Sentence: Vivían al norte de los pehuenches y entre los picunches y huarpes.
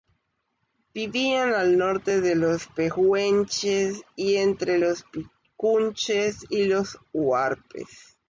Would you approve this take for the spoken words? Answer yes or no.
no